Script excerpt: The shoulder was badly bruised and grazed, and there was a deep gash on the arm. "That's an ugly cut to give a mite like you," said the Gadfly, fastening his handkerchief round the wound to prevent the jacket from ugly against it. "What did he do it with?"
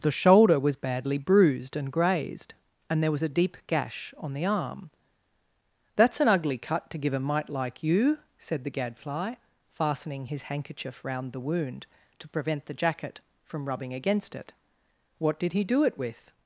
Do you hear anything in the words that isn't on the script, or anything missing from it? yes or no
yes